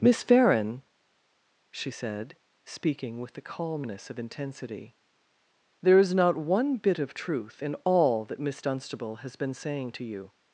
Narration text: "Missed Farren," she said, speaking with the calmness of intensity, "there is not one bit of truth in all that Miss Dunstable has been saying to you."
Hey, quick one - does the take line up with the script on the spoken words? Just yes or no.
no